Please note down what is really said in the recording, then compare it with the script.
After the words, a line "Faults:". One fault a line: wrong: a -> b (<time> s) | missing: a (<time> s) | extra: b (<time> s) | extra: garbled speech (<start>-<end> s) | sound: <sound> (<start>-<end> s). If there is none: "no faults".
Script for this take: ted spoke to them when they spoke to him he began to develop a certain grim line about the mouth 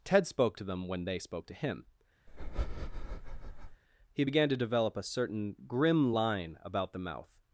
ted spoke to them when they spoke to him he began to develop a certain grim line about the mouth
Faults:
sound: breath (2.3-3.8 s)